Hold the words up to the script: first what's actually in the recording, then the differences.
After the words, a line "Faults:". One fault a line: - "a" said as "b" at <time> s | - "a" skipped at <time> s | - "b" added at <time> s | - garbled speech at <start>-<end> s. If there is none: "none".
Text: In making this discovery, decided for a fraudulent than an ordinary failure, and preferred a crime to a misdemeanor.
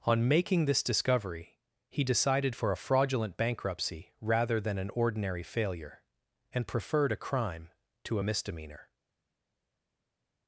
On making this discovery, he decided for a fraudulent bankruptcy rather than an ordinary failure, and preferred a crime to a misdemeanor.
Faults:
- "In" said as "On" at 0.0 s
- "he" added at 1.9 s
- "bankruptcy rather" added at 3.4 s